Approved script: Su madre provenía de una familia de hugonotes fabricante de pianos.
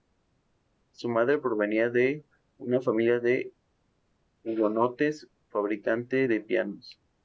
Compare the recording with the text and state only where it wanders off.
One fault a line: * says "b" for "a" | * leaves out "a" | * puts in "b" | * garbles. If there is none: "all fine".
all fine